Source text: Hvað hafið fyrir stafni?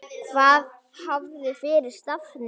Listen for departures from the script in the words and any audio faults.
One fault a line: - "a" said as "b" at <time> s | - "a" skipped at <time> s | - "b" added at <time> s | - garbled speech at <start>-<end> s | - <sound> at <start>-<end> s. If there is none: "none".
none